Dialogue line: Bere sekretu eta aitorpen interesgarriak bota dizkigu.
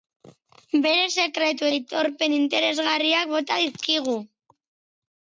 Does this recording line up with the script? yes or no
no